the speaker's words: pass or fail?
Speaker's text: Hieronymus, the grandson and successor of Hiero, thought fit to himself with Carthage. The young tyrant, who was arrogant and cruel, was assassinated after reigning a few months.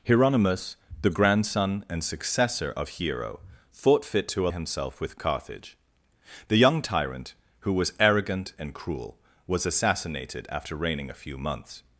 pass